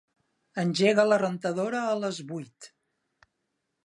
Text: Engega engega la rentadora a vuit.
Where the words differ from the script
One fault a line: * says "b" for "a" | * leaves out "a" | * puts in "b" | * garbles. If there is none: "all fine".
* leaves out "engega"
* puts in "les"